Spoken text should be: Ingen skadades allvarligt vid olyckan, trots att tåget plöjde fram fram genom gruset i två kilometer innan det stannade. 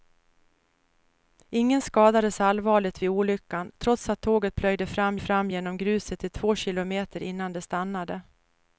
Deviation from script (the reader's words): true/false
false